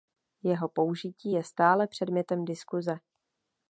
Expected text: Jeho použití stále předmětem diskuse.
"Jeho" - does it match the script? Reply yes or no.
yes